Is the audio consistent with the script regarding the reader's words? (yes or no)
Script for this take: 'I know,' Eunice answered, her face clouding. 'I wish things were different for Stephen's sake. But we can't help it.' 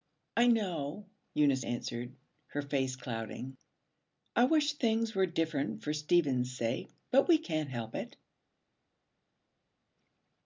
yes